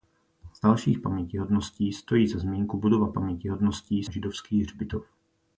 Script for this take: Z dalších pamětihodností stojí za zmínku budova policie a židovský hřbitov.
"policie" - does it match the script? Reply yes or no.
no